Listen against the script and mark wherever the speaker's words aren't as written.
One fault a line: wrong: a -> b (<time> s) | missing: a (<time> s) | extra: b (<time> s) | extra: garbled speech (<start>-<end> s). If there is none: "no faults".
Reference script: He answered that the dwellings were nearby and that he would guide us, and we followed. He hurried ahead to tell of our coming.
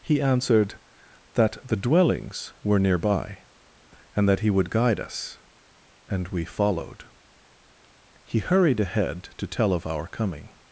no faults